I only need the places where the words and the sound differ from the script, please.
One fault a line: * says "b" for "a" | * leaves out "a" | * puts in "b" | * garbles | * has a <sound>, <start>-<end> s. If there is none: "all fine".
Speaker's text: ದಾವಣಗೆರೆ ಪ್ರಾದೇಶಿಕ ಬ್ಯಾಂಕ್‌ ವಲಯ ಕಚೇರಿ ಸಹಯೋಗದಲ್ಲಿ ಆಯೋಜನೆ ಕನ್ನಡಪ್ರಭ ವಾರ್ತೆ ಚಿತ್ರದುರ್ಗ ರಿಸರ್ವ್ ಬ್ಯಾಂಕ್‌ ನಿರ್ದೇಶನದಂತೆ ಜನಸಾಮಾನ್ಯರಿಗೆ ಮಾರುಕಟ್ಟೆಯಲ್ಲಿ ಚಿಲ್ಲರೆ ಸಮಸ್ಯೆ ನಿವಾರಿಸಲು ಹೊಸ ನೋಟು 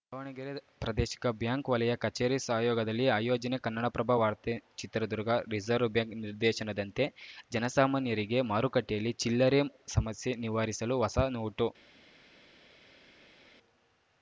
all fine